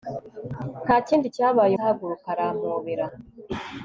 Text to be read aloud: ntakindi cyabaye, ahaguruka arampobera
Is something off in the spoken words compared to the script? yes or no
no